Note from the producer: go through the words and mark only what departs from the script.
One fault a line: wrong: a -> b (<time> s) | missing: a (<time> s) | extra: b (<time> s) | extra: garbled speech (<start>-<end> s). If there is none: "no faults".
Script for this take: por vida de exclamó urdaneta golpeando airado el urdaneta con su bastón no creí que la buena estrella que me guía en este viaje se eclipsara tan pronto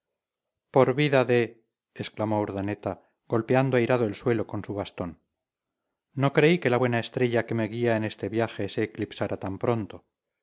wrong: urdaneta -> suelo (4.2 s)